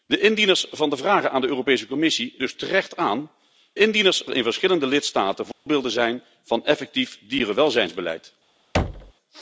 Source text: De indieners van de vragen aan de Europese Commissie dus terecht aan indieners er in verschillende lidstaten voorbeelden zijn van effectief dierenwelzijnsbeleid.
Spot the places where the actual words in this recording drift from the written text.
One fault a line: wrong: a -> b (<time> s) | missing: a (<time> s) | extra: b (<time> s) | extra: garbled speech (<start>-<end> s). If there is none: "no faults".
no faults